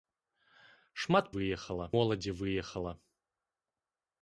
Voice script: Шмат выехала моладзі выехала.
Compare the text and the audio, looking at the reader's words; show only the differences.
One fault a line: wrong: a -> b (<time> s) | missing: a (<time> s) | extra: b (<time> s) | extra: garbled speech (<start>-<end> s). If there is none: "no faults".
no faults